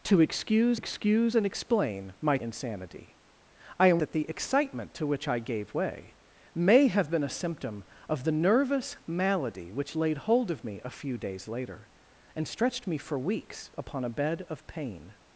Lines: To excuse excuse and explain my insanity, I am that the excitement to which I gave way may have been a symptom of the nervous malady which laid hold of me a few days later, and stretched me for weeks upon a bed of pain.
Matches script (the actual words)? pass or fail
pass